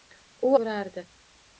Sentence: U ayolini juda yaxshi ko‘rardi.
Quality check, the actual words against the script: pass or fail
fail